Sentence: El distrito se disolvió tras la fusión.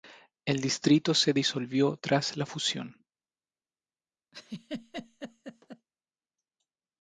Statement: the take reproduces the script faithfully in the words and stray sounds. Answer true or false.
false